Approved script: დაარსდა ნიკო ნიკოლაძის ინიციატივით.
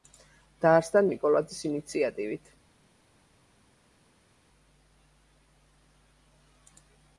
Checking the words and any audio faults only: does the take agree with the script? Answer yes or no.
no